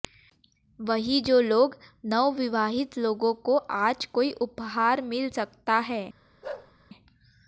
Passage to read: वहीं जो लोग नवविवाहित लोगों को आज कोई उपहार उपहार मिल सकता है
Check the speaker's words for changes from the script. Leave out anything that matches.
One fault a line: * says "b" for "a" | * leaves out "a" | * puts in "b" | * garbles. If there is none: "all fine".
* leaves out "उपहार"